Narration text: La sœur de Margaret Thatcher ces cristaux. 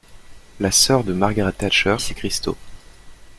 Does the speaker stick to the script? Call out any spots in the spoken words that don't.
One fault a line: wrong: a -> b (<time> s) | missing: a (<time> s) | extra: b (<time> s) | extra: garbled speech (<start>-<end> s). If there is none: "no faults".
no faults